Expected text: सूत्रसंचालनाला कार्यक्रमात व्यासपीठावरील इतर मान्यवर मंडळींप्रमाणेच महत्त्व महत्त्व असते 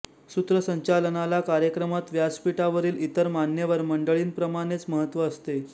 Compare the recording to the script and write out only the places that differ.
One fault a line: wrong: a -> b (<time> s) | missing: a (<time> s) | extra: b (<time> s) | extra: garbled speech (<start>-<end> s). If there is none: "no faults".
missing: महत्त्व (5.3 s)